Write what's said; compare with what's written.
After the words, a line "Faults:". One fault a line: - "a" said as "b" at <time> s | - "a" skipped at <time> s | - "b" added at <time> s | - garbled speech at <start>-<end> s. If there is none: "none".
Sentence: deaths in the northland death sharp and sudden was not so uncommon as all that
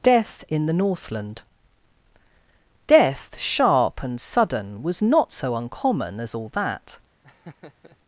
death in the northland death sharp and sudden was not so uncommon as all that
Faults:
- "deaths" said as "death" at 0.0 s